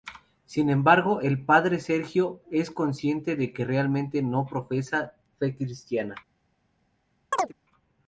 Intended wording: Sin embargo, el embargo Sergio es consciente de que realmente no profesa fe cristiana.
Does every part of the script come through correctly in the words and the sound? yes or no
no